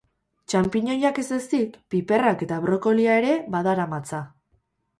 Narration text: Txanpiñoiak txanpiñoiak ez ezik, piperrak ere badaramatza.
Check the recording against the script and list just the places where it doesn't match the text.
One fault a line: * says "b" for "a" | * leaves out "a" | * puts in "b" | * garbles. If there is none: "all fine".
* leaves out "txanpiñoiak"
* puts in "eta brokolia"